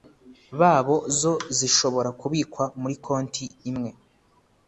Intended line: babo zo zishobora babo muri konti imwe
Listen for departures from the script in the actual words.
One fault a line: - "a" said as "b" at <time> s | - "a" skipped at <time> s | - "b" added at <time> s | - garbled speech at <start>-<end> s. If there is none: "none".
- "babo" said as "kubikwa" at 2.2 s